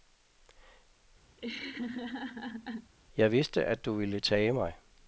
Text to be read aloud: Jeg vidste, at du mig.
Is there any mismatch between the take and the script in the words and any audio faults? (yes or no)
yes